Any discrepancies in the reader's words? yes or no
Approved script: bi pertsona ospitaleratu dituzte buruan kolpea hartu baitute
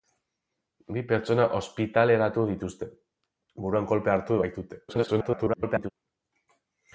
yes